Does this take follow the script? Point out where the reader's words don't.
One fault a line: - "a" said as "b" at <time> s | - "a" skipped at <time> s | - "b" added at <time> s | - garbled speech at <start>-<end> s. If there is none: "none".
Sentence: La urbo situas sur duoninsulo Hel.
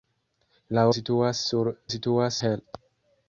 - "urbo" skipped at 0.8 s
- "duoninsulo" said as "situas" at 1.9 s